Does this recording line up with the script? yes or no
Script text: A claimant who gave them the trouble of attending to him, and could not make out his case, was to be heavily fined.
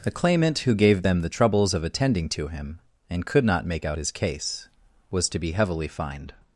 no